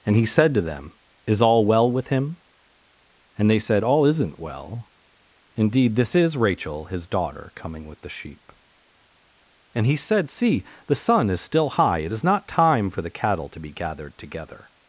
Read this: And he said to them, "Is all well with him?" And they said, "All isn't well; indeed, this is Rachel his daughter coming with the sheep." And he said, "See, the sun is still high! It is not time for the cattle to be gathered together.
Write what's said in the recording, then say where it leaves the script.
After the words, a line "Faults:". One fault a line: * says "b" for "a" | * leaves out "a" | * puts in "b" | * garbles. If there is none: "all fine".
And he said to them, "Is all well with him?" And they said, "All isn't well; indeed, this is Rachel his daughter coming with the sheep." And he said, "See, the sun is still high! It is not time for the cattle to be gathered together.
Faults:
all fine